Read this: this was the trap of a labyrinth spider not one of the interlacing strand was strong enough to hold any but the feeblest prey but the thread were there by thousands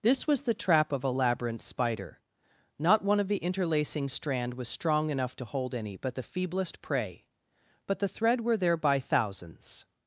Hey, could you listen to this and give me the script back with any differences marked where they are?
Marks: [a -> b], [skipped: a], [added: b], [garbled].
this was the trap of a labyrinth spider not one of the interlacing strand was strong enough to hold any but the feeblest prey but the thread were there by thousands